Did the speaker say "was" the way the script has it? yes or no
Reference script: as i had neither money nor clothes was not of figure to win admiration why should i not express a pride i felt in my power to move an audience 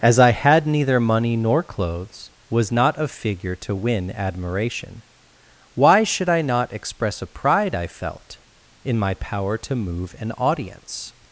yes